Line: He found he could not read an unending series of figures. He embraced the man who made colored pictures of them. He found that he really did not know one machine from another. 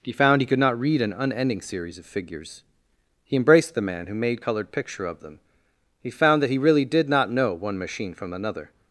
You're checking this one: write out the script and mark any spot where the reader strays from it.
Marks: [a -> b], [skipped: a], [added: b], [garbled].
He found he could not read an unending series of figures. He embraced the man who made colored [pictures -> picture] of them. He found that he really did not know one machine from another.